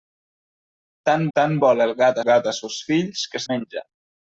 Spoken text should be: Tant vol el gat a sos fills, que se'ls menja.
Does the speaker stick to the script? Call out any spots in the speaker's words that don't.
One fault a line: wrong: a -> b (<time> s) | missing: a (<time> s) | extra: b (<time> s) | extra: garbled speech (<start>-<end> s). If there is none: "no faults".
extra: tant (1.4 s)
extra: gat (2.3 s)
missing: se'ls (3.4 s)